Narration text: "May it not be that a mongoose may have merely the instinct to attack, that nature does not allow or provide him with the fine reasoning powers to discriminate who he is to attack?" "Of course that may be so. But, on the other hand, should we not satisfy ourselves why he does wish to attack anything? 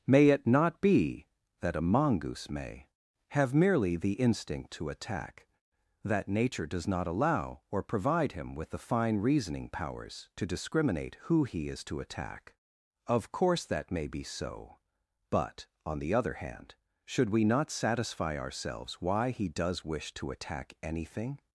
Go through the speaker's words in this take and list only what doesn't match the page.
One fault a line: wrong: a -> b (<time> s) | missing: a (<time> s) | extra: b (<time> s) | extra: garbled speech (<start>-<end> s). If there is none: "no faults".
no faults